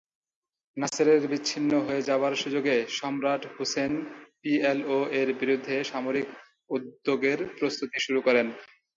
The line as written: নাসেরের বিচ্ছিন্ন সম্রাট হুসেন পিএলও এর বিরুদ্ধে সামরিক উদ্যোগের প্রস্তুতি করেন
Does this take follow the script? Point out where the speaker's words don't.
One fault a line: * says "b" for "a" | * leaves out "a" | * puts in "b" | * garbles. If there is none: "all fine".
* puts in "হয়ে যাবার সুযোগে"
* puts in "শুরু"